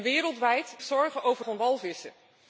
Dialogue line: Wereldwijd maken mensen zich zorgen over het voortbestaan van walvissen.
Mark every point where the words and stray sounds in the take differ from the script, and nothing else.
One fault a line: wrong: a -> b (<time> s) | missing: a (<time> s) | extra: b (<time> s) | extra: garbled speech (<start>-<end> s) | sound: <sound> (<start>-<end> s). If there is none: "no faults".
missing: maken mensen zich (0.8 s)
missing: het voortbestaan (1.5 s)